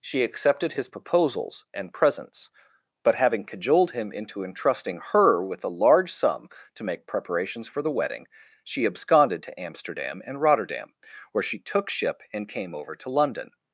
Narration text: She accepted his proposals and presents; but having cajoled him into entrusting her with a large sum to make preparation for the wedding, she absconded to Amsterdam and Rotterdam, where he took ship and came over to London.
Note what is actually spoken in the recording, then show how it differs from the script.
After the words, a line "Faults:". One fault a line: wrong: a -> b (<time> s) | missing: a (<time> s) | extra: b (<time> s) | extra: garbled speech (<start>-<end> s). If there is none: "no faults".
She accepted his proposals and presents; but having cajoled him into entrusting her with a large sum to make preparations for the wedding, she absconded to Amsterdam and Rotterdam, where she took ship and came over to London.
Faults:
wrong: preparation -> preparations (7.1 s)
wrong: he -> she (11.4 s)